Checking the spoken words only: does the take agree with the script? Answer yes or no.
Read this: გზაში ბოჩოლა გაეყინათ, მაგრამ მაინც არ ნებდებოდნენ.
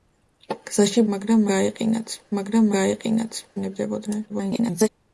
no